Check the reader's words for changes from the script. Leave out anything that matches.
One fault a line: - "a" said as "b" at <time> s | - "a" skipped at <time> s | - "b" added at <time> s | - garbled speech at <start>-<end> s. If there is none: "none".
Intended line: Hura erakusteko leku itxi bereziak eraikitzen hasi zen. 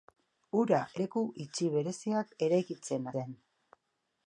- "erakusteko" skipped at 0.8 s
- "hasi" skipped at 3.1 s